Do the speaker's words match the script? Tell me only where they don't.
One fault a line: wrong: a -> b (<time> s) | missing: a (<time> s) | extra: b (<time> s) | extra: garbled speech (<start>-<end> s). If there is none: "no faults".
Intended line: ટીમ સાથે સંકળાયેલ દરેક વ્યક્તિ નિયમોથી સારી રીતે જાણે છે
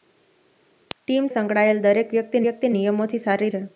missing: સાથે (1.3 s)
extra: વ્યક્તિ (2.5 s)
missing: રીતે જાણે (3.5 s)